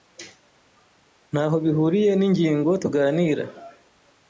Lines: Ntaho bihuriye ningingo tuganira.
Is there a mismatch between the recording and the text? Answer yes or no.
no